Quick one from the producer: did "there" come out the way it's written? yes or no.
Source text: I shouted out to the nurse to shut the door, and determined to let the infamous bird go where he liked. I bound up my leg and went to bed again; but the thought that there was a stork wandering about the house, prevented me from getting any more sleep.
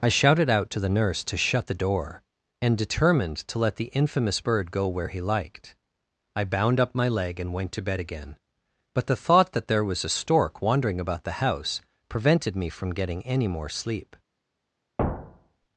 yes